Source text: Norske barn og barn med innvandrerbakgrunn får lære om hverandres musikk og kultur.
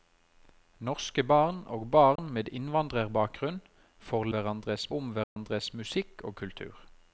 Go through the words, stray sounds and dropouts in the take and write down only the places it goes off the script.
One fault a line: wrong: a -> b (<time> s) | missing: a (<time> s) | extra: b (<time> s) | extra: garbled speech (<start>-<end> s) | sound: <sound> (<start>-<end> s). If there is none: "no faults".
sound: dropout (2.2-2.2 s)
wrong: lære -> hverandres (4.4 s)
sound: dropout (5.2-5.4 s)